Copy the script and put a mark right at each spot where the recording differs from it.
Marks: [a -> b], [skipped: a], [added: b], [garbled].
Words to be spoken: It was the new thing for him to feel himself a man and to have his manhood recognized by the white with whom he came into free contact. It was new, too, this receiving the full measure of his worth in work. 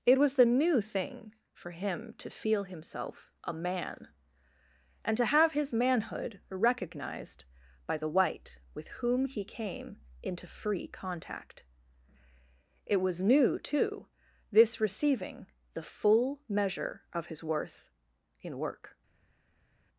It was the new thing for him to feel himself a man and to have his manhood recognized by the white with whom he came into free contact. It was new, too, this receiving the full measure of his worth in work.